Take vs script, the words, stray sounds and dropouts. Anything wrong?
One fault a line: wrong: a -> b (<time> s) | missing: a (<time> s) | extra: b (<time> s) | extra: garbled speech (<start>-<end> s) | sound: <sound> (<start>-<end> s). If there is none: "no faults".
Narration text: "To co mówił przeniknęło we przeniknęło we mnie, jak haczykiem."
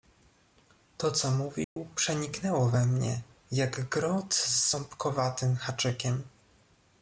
sound: dropout (1.6-1.8 s)
wrong: przeniknęło we mnie jak -> mnie jak grot z ząbkowatym (2.9 s)